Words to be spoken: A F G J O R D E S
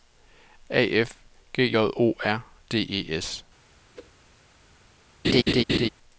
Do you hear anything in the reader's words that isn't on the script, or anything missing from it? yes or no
no